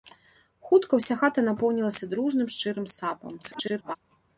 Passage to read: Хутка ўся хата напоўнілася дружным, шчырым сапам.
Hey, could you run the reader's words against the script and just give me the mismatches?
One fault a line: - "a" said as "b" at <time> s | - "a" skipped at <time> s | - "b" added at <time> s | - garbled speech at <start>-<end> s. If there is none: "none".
- garbled speech at 3.4-4.0 s